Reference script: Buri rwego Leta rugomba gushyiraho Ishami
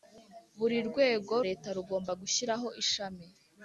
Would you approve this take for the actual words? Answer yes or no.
yes